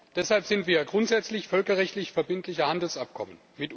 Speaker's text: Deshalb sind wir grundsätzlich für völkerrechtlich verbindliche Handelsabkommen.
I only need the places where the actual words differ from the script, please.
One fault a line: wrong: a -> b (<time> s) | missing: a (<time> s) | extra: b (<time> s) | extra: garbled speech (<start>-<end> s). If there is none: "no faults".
missing: für (1.5 s)